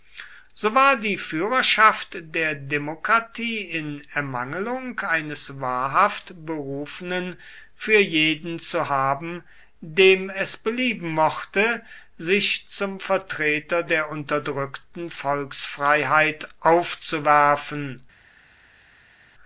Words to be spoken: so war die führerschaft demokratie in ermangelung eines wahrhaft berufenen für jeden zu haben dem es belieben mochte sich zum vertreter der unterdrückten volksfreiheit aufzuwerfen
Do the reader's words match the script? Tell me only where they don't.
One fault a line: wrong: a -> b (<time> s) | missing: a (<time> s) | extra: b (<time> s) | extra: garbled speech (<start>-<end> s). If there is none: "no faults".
extra: der (2.3 s)